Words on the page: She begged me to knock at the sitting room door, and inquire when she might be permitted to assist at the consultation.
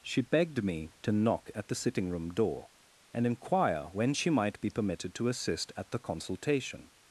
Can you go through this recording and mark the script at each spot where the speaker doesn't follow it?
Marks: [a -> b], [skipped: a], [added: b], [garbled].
She begged me to knock at the sitting room door, and inquire when she might be permitted to assist at the consultation.